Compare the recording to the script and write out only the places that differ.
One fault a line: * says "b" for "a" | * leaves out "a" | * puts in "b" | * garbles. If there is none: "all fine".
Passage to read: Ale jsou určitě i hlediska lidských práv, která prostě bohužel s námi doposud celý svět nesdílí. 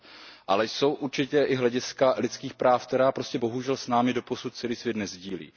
all fine